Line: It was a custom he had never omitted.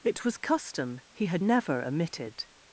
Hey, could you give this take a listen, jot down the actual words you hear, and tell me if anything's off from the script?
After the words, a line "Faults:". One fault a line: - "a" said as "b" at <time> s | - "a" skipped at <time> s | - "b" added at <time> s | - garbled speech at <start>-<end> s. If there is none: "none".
It was custom he had never omitted.
Faults:
- "a" skipped at 0.4 s